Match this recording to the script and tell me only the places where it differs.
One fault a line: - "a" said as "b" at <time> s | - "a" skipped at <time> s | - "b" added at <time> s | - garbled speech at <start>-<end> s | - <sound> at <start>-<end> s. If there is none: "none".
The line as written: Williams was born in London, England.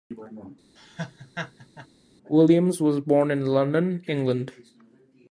- laugh at 0.8-1.9 s